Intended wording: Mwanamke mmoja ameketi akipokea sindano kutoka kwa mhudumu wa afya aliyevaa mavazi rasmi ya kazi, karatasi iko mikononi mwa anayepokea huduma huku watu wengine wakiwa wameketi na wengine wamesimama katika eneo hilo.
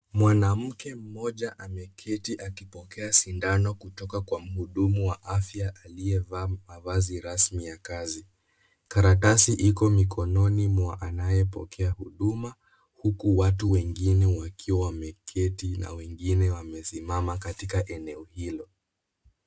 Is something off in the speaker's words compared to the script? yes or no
no